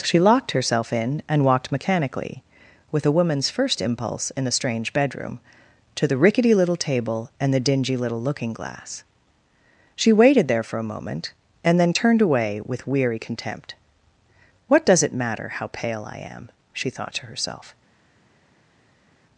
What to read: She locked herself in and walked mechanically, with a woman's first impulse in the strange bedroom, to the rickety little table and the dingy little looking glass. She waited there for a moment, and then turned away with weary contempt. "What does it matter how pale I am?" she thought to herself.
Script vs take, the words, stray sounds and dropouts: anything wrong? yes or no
no